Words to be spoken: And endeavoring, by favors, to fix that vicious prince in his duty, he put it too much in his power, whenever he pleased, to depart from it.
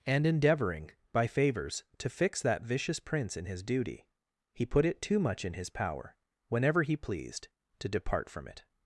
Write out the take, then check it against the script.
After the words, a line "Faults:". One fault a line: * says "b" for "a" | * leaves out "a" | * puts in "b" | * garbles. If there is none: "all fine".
And endeavoring, by favors, to fix that vicious prince in his duty, he put it too much in his power, whenever he pleased, to depart from it.
Faults:
all fine